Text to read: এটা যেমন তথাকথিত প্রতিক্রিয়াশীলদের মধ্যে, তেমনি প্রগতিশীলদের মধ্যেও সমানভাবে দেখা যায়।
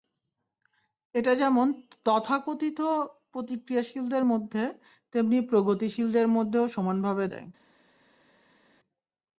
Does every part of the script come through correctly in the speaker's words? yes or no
no